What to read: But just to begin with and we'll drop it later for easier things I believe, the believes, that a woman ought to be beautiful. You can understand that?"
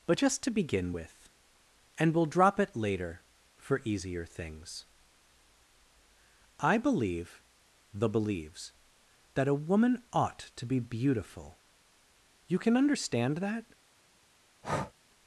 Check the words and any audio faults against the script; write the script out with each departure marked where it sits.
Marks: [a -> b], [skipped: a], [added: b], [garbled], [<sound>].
But just to begin with and we'll drop it later for easier things I believe, the believes, that a woman ought to be beautiful. You can understand that?" [breath]